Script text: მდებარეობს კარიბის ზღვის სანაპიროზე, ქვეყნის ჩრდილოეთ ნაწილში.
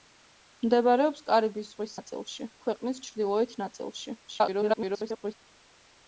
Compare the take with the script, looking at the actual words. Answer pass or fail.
fail